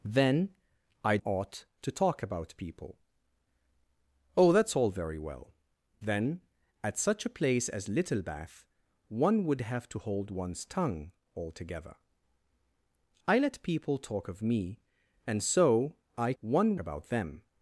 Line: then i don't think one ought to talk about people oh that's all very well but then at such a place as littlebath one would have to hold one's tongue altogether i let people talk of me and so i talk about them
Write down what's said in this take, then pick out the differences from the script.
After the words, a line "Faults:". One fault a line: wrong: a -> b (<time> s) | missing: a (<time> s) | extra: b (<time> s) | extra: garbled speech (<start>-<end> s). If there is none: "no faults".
then i ought to talk about people oh that's all very well then at such a place as littlebath one would have to hold one's tongue altogether i let people talk of me and so i one about them
Faults:
missing: don't think one (1.2 s)
missing: but (5.5 s)
wrong: talk -> one (16.4 s)